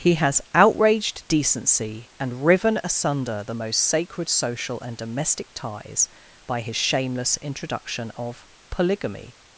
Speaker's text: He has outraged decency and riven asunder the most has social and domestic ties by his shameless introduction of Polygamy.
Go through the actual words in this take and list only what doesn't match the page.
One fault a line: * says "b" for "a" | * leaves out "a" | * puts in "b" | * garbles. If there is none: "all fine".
* says "sacred" for "has"